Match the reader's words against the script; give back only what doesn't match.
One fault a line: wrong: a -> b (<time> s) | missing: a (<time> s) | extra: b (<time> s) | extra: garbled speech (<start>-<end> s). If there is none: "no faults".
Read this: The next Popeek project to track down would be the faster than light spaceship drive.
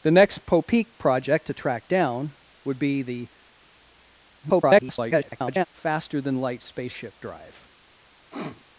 extra: garbled speech (4.4-5.6 s)